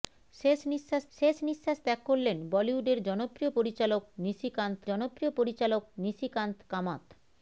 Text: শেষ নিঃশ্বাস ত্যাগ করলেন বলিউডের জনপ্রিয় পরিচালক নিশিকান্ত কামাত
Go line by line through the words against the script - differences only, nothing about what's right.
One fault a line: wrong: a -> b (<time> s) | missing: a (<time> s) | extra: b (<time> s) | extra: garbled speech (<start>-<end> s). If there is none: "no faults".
extra: শেষ নিঃশ্বাস (1.1 s)
extra: জনপ্রিয় পরিচালক নিশিকান্ত (4.9 s)